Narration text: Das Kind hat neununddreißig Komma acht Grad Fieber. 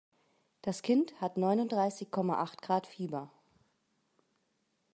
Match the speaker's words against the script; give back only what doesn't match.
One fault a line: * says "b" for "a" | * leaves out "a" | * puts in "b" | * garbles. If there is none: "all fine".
all fine